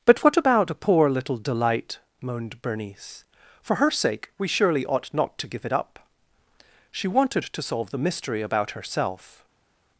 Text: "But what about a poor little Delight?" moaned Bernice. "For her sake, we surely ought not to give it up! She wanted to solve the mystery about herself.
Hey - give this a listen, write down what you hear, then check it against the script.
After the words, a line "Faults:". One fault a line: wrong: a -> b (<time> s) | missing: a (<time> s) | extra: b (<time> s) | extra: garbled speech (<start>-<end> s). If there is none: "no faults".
"But what about a poor little Delight?" moaned Bernice. "For her sake, we surely ought not to give it up! She wanted to solve the mystery about herself.
Faults:
no faults